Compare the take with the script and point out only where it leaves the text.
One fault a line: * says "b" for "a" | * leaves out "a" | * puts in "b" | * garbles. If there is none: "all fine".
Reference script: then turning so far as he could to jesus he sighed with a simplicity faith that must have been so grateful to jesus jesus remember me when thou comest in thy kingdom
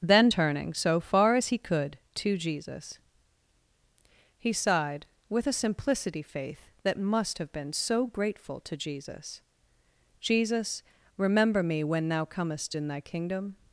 all fine